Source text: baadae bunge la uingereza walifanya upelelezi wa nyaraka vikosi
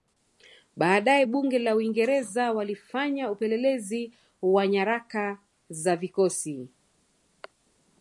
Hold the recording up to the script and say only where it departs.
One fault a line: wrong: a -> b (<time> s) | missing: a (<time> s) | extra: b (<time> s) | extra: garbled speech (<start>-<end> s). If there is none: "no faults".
extra: za (5.7 s)